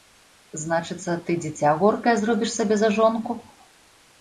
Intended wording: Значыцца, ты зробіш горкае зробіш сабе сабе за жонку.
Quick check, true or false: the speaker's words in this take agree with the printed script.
false